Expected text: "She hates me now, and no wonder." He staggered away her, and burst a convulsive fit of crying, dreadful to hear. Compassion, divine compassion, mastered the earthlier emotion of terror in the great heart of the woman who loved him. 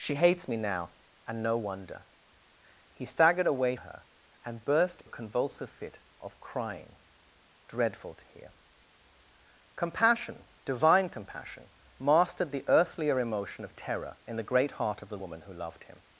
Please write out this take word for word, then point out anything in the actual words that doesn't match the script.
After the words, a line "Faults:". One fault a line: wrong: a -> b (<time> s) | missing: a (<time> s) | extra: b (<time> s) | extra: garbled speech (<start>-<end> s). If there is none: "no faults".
"She hates me now, and no wonder." He staggered away her, and burst a convulsive fit of crying, dreadful to hear. Compassion, divine compassion, mastered the earthlier emotion of terror in the great heart of the woman who loved him.
Faults:
no faults